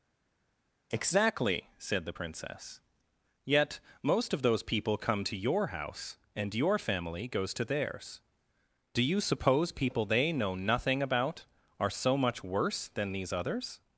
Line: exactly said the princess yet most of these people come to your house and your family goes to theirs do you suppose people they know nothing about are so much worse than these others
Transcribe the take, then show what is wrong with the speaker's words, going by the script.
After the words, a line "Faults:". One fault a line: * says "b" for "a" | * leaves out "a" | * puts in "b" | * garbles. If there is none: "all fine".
exactly said the princess yet most of those people come to your house and your family goes to theirs do you suppose people they know nothing about are so much worse than these others
Faults:
* says "those" for "these"